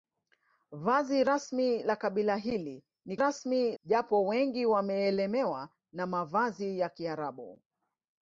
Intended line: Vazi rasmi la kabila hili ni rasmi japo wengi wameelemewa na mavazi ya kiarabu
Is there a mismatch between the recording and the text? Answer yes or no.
no